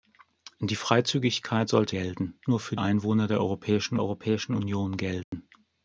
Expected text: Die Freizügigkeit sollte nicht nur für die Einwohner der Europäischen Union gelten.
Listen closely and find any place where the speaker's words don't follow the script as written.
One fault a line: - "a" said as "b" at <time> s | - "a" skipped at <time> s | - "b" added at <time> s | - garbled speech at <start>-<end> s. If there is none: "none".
- "nicht" said as "gelten" at 1.9 s
- "die" skipped at 2.8 s
- "Europäischen" added at 4.0 s